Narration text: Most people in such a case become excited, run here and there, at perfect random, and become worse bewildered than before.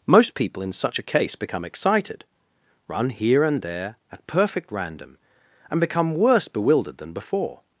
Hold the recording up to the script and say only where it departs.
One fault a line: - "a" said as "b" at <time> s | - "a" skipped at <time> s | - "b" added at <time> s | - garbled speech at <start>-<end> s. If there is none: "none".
none